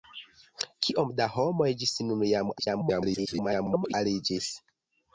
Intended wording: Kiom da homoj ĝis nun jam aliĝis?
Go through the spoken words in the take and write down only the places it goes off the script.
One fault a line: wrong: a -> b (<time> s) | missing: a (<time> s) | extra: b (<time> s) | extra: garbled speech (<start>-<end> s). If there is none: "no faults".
extra: garbled speech (2.6-3.9 s)